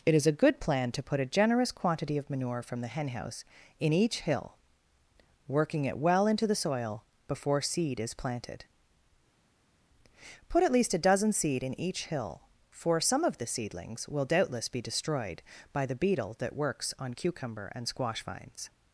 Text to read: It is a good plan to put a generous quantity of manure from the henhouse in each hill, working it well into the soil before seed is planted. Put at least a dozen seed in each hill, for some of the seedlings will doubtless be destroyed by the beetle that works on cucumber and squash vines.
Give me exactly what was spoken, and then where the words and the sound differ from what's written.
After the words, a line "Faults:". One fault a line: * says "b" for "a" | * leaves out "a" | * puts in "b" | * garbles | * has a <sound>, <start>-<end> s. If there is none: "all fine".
It is a good plan to put a generous quantity of manure from the henhouse in each hill, working it well into the soil before seed is planted. Put at least a dozen seed in each hill, for some of the seedlings will doubtless be destroyed by the beetle that works on cucumber and squash vines.
Faults:
all fine